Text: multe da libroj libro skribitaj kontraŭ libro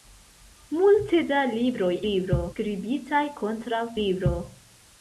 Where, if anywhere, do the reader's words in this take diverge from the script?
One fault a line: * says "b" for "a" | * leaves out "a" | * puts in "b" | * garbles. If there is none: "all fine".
all fine